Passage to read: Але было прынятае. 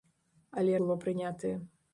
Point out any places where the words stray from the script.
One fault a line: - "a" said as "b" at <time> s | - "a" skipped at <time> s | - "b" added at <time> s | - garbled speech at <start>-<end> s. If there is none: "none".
none